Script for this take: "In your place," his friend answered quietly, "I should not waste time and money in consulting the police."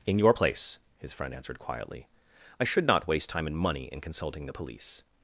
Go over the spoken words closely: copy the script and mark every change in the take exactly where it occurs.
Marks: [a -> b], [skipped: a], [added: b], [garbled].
"In your place," his friend answered quietly, "I should not waste time and money in consulting the police."